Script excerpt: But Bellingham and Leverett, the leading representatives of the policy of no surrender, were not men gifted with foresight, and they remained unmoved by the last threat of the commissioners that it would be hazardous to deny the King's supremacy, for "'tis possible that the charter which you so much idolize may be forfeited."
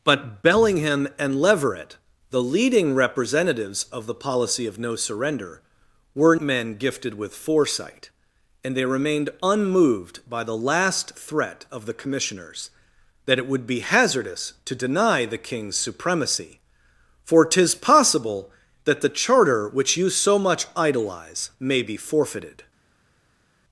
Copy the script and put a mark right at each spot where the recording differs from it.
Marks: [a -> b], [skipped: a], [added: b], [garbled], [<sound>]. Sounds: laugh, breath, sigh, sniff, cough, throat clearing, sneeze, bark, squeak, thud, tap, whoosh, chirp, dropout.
But Bellingham and Leverett, the leading representatives of the policy of no surrender, were [skipped: not] men gifted with foresight, and they remained unmoved by the last threat of the commissioners that it would be hazardous to deny the King's supremacy, for "'tis possible that the charter which you so much idolize may be forfeited."